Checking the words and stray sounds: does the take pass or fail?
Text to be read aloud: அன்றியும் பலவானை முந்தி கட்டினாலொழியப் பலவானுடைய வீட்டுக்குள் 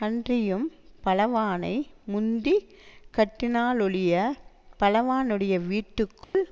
fail